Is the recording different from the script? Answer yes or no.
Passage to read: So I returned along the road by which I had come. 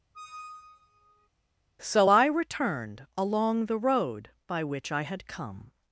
no